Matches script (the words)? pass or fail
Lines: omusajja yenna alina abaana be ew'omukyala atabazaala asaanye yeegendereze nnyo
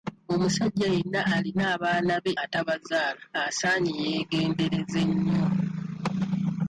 fail